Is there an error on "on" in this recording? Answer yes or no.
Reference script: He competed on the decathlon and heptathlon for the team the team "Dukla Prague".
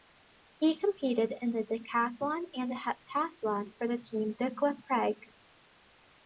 yes